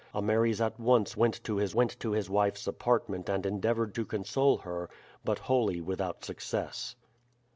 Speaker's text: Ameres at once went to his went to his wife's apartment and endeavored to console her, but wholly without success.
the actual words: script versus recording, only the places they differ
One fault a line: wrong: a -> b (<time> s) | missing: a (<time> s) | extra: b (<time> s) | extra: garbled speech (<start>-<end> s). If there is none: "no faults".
no faults